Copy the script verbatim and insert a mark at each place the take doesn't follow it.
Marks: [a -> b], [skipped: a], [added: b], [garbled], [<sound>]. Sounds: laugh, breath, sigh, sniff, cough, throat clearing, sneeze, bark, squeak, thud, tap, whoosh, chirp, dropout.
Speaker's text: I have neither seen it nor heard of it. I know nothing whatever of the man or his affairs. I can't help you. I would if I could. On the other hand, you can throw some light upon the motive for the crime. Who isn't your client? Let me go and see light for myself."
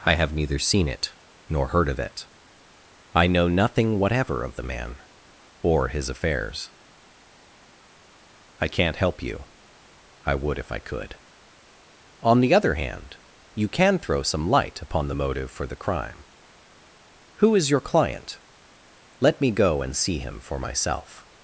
I have neither seen it nor heard of it. I know nothing whatever of the man or his affairs. I can't help you. I would if I could. On the other hand, you can throw some light upon the motive for the crime. Who [isn't -> is] your client? Let me go and see [light -> him] for myself."